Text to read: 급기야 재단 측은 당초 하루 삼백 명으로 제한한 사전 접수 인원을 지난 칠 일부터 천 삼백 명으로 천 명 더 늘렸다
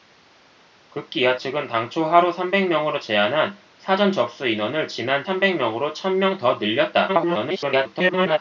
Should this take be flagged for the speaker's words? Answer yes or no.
yes